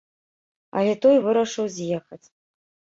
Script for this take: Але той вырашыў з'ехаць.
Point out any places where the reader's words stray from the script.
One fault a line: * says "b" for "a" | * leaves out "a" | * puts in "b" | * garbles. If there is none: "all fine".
all fine